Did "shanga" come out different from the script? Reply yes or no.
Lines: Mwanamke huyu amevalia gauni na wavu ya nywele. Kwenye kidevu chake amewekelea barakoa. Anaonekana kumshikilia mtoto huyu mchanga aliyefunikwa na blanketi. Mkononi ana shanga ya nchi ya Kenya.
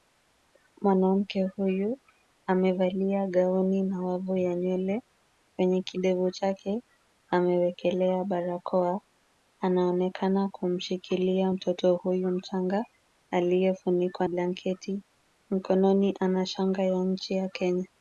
no